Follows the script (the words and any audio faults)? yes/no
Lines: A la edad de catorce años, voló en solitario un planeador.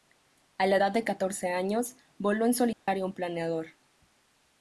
no